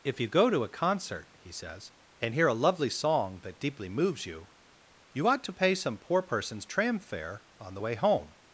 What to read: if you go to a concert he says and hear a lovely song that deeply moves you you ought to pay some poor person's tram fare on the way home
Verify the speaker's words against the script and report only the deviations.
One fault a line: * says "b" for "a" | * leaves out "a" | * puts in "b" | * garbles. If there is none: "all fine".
all fine